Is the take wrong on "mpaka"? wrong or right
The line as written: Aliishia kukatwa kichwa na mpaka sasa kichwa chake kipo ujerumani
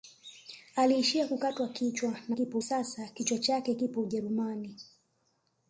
wrong